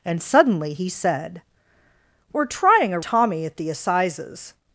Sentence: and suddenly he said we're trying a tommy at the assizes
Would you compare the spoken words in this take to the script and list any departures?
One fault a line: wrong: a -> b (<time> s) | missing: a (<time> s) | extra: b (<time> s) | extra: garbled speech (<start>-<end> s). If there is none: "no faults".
no faults